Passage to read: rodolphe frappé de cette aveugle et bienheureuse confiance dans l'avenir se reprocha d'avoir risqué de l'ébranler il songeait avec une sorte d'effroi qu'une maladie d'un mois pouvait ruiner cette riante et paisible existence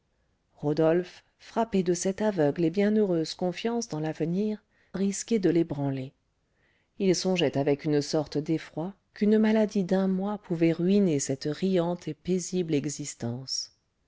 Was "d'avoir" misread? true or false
true